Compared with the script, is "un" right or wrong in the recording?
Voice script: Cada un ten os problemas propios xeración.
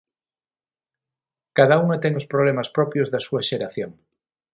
wrong